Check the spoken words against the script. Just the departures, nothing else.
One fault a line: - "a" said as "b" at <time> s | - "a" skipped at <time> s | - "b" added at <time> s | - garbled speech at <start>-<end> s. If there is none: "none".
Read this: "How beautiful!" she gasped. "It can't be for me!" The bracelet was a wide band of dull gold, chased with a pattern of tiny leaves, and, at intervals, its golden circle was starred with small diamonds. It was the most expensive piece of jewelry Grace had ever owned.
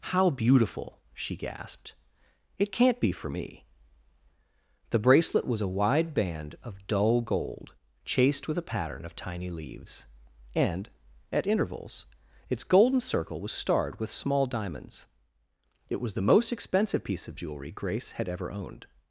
none